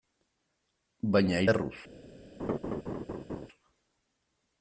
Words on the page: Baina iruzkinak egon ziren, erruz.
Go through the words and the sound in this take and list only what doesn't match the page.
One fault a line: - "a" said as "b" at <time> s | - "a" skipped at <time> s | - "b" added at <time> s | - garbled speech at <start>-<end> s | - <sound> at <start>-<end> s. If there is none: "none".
- "iruzkinak egon ziren" skipped at 1.4 s
- laugh at 2.4-3.5 s